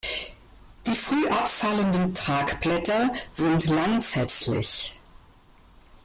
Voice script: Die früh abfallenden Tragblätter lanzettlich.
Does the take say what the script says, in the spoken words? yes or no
no